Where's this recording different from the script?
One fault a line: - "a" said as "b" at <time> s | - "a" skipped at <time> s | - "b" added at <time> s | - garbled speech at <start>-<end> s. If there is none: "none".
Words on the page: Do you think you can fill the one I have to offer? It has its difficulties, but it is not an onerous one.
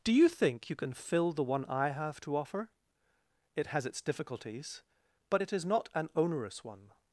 none